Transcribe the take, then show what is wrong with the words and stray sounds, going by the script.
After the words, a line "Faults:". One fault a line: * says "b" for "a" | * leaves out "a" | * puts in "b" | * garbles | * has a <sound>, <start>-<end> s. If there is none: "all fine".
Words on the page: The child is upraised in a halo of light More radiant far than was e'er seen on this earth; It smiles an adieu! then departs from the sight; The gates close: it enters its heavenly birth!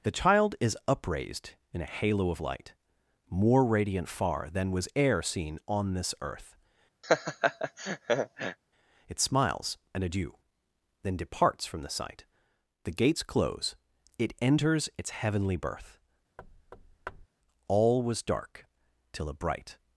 The child is upraised in a halo of light More radiant far than was e'er seen on this earth; It smiles an adieu! then departs from the sight; The gates close: it enters its heavenly birth! All was dark till a bright
Faults:
* has a laugh, 7.0-8.6 s
* has a thud, 16.4-17.3 s
* puts in "All was dark till a bright"